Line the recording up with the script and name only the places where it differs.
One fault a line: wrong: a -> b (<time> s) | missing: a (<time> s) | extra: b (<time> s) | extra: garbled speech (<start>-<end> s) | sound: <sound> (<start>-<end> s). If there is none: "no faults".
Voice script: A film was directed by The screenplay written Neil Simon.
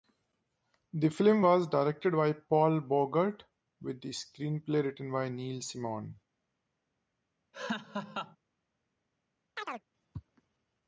wrong: A -> The (0.9 s)
extra: Paul Bogart with (2.3 s)
extra: by (5.1 s)
sound: laugh (7.5-8.4 s)
sound: chirp (9.6-9.9 s)